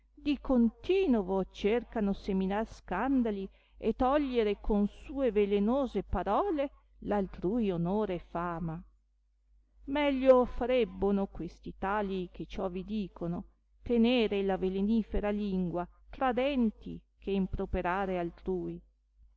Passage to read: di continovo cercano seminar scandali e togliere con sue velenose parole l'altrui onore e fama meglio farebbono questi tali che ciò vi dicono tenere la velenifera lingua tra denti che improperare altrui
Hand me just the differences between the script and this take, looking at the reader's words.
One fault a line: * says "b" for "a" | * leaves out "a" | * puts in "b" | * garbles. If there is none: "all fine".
all fine